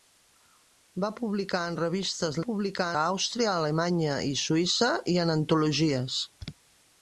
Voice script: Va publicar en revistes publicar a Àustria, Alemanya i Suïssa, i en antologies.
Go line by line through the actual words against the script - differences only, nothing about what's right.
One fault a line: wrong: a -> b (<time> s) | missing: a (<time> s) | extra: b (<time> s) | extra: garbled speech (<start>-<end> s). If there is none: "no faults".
no faults